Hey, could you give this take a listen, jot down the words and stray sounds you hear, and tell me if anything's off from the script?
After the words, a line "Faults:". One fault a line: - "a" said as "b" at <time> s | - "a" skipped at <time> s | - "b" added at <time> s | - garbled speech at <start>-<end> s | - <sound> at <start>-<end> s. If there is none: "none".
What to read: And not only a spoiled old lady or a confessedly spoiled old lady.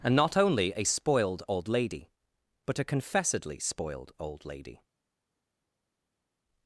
And not only a spoiled old lady but a confessedly spoiled old lady.
Faults:
- "or" said as "but" at 2.7 s